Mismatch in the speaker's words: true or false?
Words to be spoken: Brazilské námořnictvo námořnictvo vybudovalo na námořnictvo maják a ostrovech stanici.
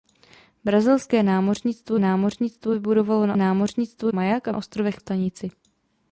false